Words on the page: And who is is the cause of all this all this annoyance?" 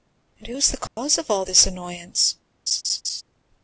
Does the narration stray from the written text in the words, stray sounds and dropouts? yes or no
yes